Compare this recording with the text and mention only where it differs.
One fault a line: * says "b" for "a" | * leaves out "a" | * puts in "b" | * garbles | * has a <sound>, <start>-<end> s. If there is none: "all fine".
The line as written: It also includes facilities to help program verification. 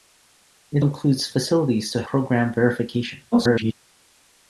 * leaves out "also"
* leaves out "help"
* garbles